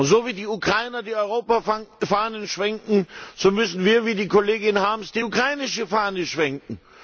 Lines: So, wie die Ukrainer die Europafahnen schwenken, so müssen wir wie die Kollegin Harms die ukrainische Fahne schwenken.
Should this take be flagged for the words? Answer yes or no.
no